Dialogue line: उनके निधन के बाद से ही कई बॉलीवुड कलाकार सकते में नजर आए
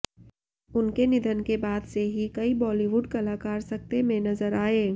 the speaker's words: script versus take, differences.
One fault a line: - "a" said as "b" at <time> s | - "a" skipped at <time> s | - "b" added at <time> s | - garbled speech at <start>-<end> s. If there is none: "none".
none